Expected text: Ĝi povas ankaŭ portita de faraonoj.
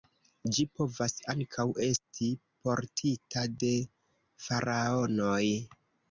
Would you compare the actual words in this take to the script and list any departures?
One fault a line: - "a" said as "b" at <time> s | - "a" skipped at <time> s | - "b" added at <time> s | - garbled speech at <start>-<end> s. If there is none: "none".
- "esti" added at 1.9 s